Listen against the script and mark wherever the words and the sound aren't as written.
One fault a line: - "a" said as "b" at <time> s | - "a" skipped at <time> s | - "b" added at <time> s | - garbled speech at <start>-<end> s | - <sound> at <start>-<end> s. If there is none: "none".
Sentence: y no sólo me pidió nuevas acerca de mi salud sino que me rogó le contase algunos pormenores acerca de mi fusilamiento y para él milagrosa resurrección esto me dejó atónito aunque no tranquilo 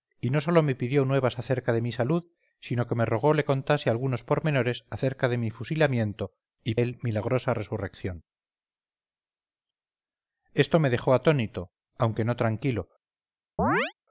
- "para" skipped at 6.8 s
- chirp at 13.6-13.9 s